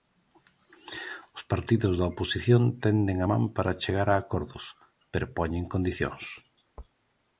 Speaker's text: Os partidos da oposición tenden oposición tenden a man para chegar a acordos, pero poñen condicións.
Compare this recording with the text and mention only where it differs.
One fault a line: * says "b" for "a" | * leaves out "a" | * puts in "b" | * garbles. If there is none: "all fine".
* leaves out "oposición tenden"